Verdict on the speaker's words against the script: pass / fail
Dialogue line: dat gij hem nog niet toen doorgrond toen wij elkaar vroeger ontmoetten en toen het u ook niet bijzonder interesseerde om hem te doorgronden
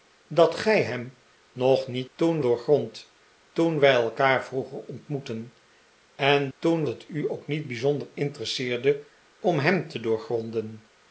pass